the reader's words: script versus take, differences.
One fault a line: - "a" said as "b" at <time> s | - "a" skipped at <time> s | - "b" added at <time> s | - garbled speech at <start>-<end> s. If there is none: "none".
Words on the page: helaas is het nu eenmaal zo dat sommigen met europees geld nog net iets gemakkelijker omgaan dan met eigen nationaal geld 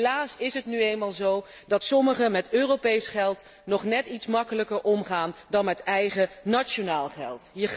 none